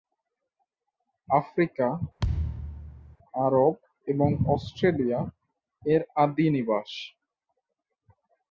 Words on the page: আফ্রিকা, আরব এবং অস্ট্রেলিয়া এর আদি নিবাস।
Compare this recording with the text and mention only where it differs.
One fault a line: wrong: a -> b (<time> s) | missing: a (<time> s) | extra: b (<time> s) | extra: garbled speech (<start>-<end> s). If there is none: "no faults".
no faults